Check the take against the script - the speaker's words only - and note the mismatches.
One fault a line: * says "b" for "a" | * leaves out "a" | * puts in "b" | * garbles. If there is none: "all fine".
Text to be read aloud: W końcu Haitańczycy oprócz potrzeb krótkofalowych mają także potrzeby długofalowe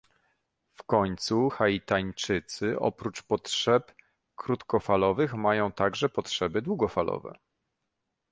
all fine